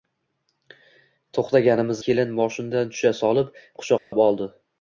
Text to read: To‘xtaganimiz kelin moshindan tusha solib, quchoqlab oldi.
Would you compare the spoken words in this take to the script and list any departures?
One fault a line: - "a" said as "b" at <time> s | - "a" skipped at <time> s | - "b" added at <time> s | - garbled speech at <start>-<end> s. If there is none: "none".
none